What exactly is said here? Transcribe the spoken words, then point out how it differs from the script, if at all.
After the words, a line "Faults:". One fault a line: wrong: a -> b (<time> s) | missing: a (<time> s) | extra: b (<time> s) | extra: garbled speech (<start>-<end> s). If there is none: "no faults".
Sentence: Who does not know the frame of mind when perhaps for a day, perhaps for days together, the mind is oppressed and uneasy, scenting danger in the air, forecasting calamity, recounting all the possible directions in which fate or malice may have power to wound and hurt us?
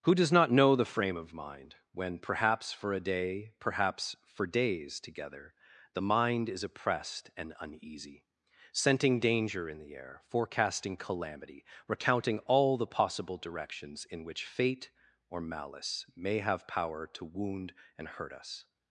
Who does not know the frame of mind when perhaps for a day, perhaps for days together, the mind is oppressed and uneasy, scenting danger in the air, forecasting calamity, recounting all the possible directions in which fate or malice may have power to wound and hurt us?
Faults:
no faults